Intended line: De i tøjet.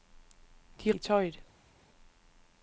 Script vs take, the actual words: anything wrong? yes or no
no